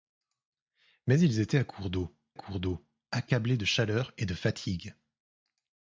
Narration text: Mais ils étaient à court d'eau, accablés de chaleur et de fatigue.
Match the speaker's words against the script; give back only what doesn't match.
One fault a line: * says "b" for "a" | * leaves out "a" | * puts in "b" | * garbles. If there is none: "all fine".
* puts in "court d'eau"